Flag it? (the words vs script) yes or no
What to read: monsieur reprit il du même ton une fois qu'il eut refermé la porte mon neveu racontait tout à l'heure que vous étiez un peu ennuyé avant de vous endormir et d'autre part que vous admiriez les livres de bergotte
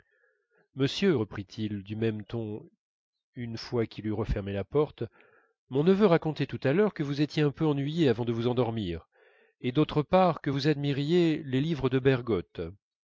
no